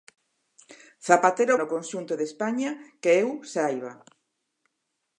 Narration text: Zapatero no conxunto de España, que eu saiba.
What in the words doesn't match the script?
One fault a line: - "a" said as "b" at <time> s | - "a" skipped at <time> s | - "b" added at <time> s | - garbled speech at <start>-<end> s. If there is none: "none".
none